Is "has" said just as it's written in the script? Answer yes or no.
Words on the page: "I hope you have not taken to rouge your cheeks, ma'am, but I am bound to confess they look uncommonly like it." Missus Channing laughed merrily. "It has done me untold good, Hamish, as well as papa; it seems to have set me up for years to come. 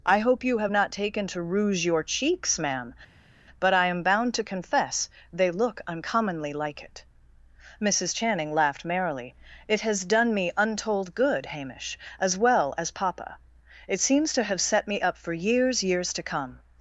yes